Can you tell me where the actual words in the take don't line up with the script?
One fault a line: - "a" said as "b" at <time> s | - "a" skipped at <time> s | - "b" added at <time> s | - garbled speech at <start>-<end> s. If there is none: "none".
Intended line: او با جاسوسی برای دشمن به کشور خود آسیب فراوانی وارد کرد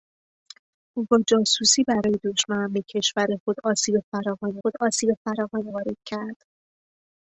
- "خود آسیب فراوانی" added at 4.6 s